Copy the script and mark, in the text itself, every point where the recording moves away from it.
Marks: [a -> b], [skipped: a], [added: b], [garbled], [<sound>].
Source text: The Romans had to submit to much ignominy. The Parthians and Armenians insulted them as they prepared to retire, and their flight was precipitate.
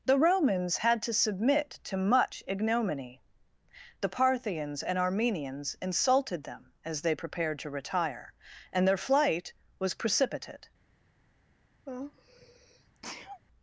The Romans had to submit to much ignominy. The Parthians and Armenians insulted them as they prepared to retire, and their flight was precipitate. [sneeze]